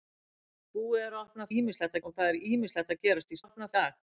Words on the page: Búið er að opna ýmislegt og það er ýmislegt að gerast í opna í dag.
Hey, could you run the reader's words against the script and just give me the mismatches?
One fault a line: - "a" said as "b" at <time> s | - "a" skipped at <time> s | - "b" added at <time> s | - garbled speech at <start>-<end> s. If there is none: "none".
none